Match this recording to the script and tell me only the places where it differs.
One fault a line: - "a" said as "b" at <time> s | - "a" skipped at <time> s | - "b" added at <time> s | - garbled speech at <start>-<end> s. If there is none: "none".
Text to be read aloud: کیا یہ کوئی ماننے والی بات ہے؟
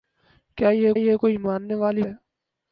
- "یہ" added at 0.9 s
- "بات" skipped at 2.0 s